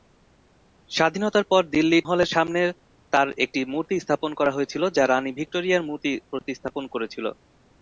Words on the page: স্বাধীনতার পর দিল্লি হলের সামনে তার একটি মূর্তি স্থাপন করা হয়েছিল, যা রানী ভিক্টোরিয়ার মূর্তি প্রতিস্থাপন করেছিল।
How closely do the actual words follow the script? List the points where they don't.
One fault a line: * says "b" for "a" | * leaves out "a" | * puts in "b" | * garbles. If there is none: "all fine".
all fine